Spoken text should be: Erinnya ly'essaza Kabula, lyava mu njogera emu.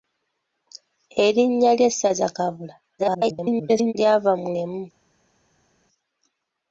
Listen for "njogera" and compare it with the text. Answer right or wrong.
wrong